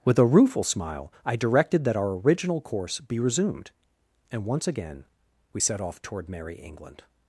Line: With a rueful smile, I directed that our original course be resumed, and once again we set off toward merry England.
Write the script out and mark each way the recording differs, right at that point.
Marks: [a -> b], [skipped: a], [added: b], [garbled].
With a rueful smile, I directed that our original course be resumed, and once again we set off toward merry England.